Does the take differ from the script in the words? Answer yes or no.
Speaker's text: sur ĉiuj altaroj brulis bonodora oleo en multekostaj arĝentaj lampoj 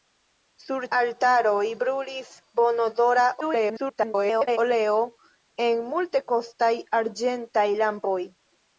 yes